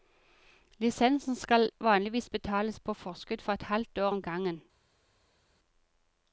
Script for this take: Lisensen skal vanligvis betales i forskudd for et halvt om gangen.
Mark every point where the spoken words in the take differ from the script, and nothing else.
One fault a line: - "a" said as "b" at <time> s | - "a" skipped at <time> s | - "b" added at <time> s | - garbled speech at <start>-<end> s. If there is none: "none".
- "i" said as "på" at 2.8 s
- "år" added at 4.0 s